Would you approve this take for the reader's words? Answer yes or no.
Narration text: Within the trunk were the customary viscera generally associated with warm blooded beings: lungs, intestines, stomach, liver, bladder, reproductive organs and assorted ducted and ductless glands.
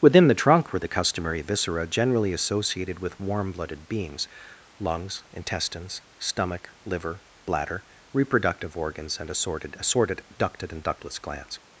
no